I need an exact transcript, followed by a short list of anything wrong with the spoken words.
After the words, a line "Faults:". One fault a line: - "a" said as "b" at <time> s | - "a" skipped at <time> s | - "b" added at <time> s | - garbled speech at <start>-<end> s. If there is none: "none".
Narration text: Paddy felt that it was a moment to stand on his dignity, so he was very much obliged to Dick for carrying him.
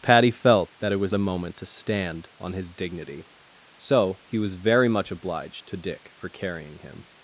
Paddy felt that it was a moment to stand on his dignity, so he was very much obliged to Dick for carrying him.
Faults:
none